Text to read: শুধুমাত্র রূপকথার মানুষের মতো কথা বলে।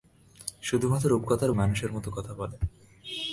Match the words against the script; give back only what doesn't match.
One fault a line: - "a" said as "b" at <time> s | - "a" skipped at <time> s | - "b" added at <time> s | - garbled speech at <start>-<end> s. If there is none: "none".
none